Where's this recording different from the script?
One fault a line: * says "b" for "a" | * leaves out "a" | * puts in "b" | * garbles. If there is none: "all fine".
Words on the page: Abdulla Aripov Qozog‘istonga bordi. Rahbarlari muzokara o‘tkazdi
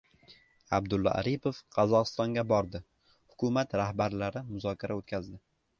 * puts in "Hukumat"